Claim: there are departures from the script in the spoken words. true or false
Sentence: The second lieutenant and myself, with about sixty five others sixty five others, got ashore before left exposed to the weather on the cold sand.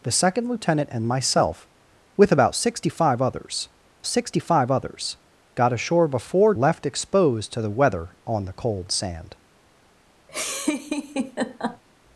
false